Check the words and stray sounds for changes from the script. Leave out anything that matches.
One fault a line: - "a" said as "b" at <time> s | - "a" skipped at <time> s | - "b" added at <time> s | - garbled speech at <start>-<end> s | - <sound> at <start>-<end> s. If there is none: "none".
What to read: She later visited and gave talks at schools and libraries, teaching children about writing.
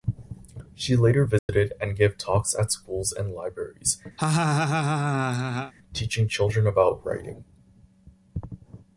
- dropout at 1.4-1.5 s
- laugh at 4.2-5.7 s